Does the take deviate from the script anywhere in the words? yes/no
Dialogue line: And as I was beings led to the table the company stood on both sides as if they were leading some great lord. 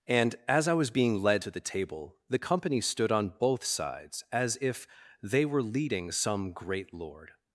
yes